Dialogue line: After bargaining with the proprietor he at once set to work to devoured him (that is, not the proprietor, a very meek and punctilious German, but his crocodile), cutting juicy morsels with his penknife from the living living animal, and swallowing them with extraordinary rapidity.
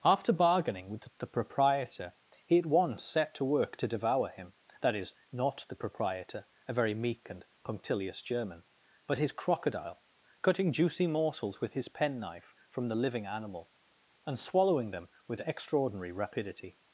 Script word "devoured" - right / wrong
wrong